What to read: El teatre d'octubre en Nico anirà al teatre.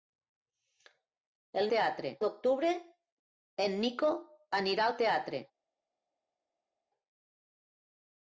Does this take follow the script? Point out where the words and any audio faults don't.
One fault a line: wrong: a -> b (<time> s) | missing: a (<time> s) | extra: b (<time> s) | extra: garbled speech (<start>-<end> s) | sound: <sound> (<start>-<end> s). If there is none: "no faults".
no faults